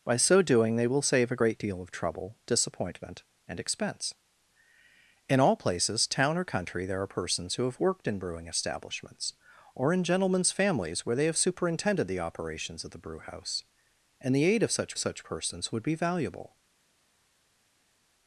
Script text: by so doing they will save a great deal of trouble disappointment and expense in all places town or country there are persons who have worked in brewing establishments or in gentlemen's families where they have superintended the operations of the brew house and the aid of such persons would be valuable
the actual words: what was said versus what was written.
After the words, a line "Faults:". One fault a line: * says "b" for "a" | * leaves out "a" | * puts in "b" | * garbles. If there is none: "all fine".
by so doing they will save a great deal of trouble disappointment and expense in all places town or country there are persons who have worked in brewing establishments or in gentlemen's families where they have superintended the operations of the brew house and the aid of such such persons would be valuable
Faults:
* puts in "such"